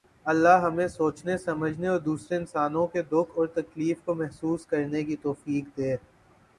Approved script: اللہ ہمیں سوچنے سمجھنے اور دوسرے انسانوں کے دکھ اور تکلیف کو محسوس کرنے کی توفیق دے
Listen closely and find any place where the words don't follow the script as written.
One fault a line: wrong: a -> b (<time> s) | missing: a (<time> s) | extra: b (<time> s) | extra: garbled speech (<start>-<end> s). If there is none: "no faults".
no faults